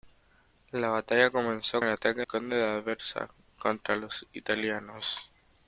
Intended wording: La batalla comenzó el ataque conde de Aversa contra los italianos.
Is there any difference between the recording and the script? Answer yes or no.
no